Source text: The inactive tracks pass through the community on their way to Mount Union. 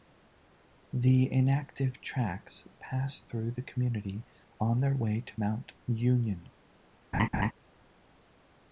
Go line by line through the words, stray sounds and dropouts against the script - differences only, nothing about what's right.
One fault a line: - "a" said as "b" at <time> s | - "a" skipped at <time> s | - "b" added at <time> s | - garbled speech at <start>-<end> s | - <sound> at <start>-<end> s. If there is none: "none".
- laugh at 7.1-7.5 s